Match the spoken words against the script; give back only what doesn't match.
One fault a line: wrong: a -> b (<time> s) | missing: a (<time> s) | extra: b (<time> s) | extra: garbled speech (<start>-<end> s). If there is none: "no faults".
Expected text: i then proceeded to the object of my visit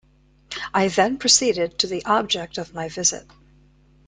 no faults